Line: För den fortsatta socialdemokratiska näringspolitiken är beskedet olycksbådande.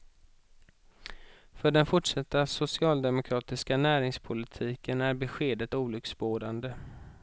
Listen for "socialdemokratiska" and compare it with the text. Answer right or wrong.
right